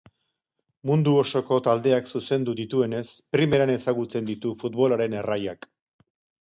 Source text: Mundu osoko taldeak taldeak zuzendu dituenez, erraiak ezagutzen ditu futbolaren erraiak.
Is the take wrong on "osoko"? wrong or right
right